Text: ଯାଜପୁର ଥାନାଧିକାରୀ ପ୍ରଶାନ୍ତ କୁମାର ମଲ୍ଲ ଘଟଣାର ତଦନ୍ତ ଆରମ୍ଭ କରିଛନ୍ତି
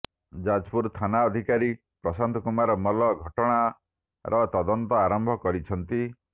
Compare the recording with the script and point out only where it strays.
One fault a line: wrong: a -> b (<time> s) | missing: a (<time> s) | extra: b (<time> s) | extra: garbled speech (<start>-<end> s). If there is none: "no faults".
no faults